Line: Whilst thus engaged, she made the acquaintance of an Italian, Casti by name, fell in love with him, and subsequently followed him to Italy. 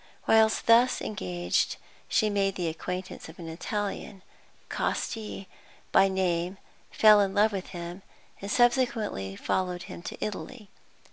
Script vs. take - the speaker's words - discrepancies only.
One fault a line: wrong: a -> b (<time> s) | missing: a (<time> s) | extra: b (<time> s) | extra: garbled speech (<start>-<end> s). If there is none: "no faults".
no faults